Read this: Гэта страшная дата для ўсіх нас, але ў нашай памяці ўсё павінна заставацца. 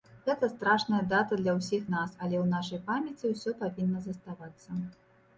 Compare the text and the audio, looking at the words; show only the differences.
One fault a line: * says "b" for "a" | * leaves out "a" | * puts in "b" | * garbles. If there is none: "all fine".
all fine